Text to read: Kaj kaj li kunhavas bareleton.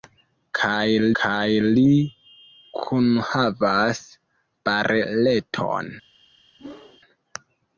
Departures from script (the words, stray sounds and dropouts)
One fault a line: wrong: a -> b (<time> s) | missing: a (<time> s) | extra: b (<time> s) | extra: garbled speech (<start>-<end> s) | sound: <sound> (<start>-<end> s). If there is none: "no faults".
sound: whoosh (6.6-7.0 s)